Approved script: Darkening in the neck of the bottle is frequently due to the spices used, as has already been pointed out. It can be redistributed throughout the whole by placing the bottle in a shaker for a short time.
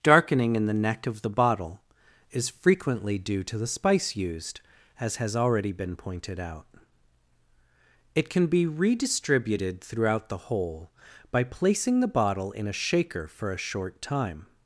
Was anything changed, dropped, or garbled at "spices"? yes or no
yes